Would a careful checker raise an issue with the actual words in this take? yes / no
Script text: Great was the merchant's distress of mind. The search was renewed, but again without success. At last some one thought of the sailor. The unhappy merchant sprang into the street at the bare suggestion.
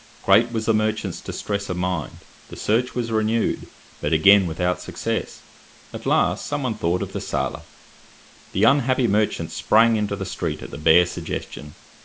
no